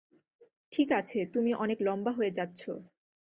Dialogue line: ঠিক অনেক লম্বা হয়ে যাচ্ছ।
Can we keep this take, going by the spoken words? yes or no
no